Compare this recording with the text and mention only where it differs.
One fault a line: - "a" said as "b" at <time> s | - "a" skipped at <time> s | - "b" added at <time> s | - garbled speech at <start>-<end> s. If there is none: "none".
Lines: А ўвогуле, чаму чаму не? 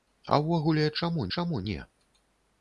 none